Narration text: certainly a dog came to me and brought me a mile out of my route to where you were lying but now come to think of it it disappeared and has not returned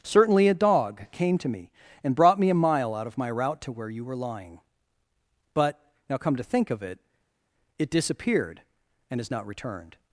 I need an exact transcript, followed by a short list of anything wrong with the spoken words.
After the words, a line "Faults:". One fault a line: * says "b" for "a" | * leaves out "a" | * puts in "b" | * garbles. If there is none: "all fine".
certainly a dog came to me and brought me a mile out of my route to where you were lying but now come to think of it it disappeared and has not returned
Faults:
all fine